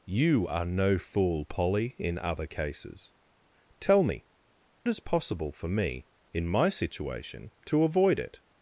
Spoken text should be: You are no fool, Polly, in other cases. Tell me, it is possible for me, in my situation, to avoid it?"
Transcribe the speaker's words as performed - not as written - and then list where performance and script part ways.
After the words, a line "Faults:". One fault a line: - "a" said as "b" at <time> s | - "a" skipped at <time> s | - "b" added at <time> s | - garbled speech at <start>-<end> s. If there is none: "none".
You are no fool, Polly, in other cases. Tell me, it is possible for me, in my situation, to avoid it?"
Faults:
none